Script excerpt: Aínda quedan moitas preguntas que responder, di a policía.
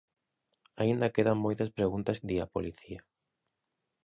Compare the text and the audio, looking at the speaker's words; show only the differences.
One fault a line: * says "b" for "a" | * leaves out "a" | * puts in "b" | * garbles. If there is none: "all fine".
* leaves out "que responder"